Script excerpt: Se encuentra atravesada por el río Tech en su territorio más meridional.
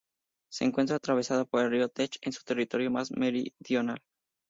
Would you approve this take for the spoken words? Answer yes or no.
yes